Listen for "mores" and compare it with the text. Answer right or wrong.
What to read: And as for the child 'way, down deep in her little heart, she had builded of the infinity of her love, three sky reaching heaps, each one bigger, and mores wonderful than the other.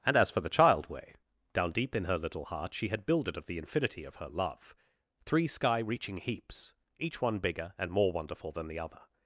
wrong